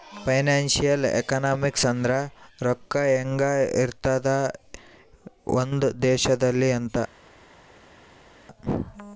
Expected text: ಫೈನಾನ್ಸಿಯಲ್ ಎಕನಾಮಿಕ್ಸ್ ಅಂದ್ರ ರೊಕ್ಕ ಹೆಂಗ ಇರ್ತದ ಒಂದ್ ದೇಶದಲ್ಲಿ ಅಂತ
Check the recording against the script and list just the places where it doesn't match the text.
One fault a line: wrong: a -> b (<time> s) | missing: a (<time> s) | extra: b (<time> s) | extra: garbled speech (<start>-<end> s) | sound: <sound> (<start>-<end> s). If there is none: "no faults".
no faults